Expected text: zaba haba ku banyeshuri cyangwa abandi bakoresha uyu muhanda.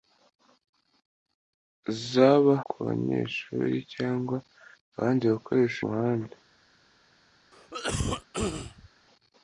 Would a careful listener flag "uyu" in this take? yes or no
yes